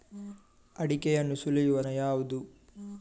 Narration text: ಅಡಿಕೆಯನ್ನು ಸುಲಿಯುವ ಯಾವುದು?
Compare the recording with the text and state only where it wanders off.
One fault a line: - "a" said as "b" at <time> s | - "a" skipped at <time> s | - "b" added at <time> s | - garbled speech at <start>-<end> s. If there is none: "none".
none